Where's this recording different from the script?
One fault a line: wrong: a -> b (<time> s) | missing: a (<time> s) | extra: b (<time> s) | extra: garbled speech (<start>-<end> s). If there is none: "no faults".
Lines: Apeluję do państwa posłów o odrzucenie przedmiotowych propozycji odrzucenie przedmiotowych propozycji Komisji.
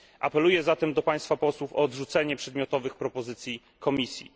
extra: zatem (0.6 s)
missing: odrzucenie przedmiotowych propozycji (3.6 s)